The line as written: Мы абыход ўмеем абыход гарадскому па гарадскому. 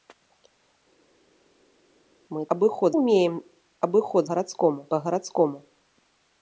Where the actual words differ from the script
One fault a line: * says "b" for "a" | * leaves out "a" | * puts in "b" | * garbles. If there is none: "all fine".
all fine